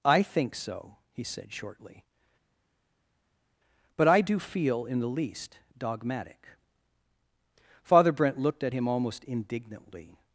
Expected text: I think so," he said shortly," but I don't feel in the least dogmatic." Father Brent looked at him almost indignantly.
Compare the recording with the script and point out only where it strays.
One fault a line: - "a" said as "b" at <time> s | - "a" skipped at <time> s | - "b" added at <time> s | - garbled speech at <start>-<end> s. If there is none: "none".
- "don't" said as "do" at 4.2 s